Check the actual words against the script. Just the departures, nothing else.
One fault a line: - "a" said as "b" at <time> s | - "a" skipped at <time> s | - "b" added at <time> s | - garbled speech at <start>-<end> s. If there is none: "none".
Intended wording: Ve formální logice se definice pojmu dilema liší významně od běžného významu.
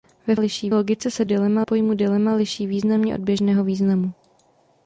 - "formální" said as "liší" at 0.4 s
- "definice" said as "dilema" at 1.2 s